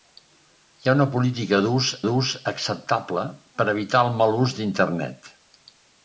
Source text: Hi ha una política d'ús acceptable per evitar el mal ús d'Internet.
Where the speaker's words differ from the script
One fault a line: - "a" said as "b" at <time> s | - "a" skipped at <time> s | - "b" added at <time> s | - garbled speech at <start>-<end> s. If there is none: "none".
- "d'ús" added at 2.1 s